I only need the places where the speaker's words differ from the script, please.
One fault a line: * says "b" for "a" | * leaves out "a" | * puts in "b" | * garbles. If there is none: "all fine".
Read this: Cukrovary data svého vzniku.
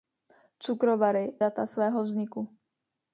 all fine